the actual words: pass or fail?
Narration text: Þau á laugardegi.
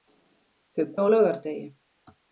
pass